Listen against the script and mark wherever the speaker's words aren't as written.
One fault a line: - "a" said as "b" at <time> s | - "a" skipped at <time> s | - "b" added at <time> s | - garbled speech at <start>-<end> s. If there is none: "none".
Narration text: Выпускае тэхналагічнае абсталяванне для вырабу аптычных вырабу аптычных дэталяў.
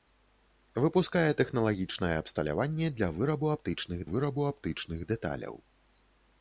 none